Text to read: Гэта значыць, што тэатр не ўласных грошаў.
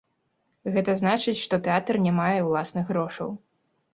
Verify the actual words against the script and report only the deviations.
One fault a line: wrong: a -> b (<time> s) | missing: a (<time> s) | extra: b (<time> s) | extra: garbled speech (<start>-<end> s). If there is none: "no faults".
extra: мае (2.2 s)